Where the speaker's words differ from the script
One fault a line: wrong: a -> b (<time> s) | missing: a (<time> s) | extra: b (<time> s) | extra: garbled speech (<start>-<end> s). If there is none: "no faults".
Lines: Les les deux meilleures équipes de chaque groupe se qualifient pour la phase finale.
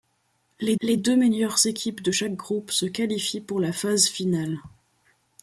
no faults